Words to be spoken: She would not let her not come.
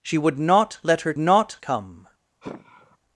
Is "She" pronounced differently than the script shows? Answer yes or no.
no